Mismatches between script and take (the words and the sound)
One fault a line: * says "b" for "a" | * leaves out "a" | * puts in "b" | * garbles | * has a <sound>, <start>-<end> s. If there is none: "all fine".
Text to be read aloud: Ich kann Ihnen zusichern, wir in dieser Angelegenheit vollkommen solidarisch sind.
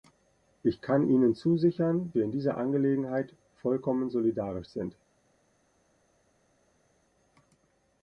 all fine